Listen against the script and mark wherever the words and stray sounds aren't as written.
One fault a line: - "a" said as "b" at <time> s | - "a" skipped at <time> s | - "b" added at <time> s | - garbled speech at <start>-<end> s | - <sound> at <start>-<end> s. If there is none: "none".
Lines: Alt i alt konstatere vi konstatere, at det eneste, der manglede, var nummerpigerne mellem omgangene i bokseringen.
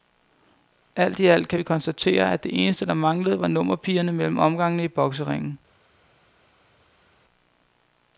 - "konstatere" said as "kan" at 1.5 s